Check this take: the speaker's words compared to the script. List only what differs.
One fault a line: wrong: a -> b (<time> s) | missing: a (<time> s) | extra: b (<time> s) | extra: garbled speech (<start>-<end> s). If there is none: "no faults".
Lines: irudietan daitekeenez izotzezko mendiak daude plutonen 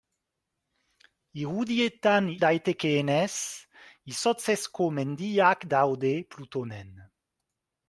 no faults